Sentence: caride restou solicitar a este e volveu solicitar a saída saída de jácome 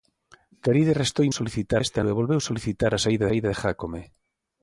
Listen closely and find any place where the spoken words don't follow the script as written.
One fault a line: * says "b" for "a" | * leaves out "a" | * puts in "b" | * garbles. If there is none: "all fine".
all fine